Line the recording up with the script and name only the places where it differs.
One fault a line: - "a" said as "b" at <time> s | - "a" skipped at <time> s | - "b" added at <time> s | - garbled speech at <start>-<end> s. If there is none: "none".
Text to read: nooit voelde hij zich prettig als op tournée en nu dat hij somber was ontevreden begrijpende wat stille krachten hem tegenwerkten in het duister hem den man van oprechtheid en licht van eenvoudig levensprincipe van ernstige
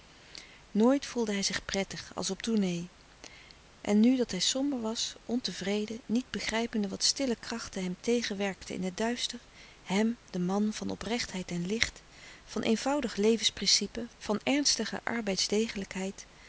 - "niet" added at 6.1 s